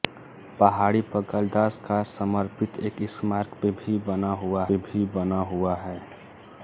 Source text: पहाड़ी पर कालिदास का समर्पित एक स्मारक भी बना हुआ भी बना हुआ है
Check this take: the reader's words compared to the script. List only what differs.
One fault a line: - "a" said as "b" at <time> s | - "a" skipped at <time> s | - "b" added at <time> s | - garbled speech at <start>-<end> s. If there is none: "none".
none